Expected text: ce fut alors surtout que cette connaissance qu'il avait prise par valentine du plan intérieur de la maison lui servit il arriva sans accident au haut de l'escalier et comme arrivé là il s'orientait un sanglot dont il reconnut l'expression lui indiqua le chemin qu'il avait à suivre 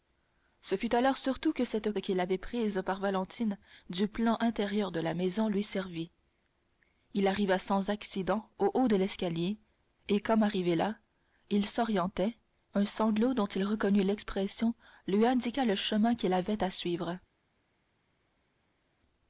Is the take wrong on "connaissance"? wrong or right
wrong